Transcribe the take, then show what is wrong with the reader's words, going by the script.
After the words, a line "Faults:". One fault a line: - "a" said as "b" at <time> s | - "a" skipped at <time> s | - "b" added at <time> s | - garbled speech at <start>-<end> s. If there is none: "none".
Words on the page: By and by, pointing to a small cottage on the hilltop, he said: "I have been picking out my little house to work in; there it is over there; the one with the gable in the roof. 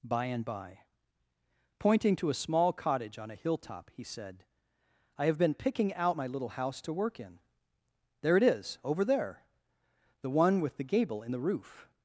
By and by, pointing to a small cottage on a hilltop, he said: "I have been picking out my little house to work in; there it is over there; the one with the gable in the roof.
Faults:
- "the" said as "a" at 3.3 s